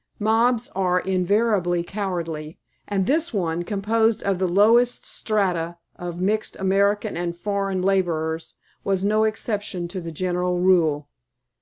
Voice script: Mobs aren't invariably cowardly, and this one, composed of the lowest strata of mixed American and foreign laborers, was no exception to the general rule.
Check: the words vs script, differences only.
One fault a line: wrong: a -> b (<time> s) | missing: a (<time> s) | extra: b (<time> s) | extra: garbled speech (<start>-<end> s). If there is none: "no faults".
wrong: aren't -> are (0.8 s)